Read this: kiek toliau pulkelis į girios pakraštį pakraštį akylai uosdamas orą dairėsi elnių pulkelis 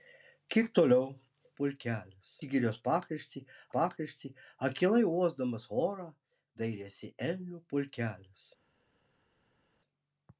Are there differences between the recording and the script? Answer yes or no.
no